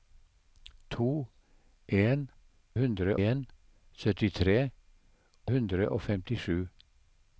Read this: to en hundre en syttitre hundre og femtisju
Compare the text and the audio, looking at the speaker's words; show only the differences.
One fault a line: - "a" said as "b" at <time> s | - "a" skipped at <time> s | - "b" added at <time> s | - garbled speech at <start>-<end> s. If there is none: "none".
none